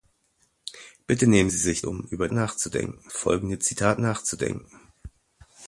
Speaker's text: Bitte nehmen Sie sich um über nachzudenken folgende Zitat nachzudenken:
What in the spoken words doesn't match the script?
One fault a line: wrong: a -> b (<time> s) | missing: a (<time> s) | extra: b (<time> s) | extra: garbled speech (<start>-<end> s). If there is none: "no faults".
no faults